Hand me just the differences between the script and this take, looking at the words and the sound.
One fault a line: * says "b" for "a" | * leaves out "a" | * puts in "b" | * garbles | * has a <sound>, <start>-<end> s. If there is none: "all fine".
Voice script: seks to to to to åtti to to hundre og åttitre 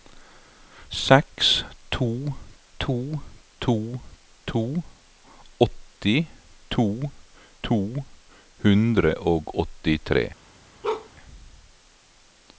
* has a bark, 10.8-11.1 s